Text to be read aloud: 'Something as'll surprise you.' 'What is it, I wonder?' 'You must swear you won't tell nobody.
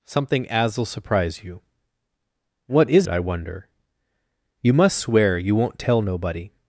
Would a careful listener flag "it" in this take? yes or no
yes